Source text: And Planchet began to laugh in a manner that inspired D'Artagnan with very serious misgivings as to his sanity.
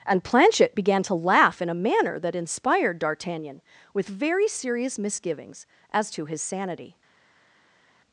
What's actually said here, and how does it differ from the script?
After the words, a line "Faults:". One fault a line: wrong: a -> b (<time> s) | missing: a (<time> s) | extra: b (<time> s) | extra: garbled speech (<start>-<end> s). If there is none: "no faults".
And Planchet began to laugh in a manner that inspired D'Artagnan with very serious misgivings as to his sanity.
Faults:
no faults